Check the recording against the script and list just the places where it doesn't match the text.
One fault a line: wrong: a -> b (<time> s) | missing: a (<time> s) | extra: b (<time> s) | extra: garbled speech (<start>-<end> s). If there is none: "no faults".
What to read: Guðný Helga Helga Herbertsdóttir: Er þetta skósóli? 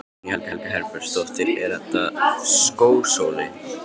no faults